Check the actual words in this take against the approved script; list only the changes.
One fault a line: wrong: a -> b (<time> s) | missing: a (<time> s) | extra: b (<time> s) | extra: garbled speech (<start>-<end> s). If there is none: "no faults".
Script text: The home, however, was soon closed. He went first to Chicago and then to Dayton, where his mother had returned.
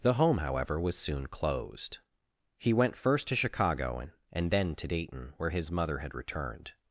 extra: and (4.3 s)